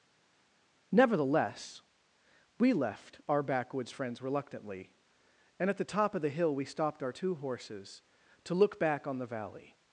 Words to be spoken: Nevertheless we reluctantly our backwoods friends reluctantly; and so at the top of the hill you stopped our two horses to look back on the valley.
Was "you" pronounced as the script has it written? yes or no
no